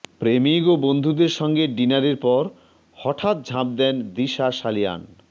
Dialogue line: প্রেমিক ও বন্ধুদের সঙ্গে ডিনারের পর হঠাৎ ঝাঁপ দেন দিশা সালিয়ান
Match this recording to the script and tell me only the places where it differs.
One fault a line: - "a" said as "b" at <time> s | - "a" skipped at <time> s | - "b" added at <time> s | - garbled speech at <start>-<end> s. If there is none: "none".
none